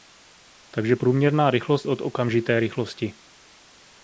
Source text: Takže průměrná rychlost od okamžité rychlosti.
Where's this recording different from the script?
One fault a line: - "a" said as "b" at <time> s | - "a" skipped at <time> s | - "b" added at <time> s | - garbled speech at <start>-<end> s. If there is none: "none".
none